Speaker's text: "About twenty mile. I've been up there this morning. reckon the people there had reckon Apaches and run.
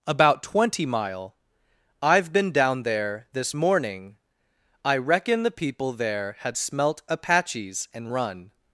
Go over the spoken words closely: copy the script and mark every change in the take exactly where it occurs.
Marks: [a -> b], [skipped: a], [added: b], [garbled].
"About twenty mile. I've been [up -> down] there this morning. [added: I] reckon the people there had [reckon -> smelt] Apaches and run.